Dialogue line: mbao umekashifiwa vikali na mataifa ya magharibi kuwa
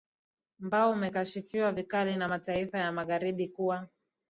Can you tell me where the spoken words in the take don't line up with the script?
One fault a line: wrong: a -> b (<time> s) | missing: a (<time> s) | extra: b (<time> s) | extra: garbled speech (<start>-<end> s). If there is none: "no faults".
no faults